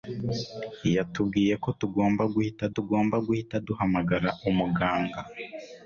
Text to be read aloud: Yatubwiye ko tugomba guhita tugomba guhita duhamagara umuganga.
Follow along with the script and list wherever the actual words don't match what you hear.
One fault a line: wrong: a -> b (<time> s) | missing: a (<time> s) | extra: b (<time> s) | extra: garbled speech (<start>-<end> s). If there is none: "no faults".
no faults